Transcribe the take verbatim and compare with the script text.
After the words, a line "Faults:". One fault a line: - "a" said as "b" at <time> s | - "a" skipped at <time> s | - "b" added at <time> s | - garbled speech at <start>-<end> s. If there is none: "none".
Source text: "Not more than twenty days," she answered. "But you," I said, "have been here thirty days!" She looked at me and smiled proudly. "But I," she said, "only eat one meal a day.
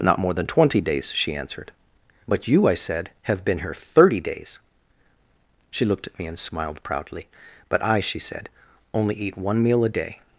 "Not more than twenty days," she answered. "But you," I said, "have been here thirty days!" She looked at me and smiled proudly. "But I," she said, "only eat one meal a day.
Faults:
none